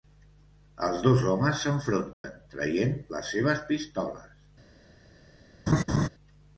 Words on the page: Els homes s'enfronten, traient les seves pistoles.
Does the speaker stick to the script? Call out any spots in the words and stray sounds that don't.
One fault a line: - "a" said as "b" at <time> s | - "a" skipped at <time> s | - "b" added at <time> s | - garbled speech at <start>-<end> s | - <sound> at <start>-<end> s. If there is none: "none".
- "dos" added at 1.1 s
- dropout at 2.1-2.2 s
- laugh at 5.7-6.1 s